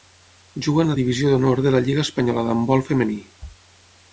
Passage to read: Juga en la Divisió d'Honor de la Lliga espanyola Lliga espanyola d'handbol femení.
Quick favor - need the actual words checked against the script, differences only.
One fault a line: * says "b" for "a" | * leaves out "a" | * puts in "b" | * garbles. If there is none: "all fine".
* leaves out "Lliga espanyola"